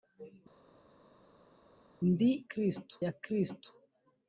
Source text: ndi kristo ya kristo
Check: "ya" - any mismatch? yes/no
no